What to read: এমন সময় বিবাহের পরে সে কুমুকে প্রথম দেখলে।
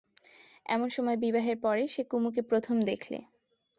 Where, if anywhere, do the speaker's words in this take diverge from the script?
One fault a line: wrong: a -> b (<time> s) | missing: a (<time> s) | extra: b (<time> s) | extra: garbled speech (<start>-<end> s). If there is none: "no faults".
no faults